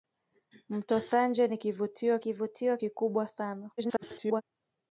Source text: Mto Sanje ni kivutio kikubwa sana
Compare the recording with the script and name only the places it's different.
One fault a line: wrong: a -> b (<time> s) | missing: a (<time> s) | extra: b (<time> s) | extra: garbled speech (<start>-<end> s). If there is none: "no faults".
extra: kivutio (2.2 s)
extra: garbled speech (3.8-4.4 s)